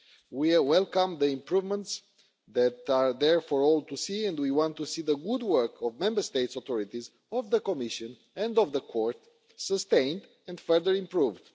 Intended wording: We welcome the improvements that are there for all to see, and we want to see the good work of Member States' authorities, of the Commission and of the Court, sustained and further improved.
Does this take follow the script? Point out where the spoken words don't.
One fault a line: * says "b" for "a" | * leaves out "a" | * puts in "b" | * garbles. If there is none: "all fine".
all fine